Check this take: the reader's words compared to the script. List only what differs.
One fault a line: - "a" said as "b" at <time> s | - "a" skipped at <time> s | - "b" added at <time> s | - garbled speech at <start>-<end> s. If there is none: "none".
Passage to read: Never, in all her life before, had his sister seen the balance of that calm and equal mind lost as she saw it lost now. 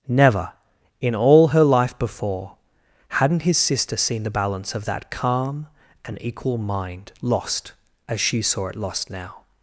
- "had" said as "hadn't" at 3.1 s